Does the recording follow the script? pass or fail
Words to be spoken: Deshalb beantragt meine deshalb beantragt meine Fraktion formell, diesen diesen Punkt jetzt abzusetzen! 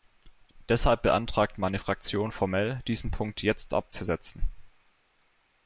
fail